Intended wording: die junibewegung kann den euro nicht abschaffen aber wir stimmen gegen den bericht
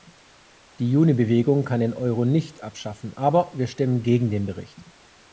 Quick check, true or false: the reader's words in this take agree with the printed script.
true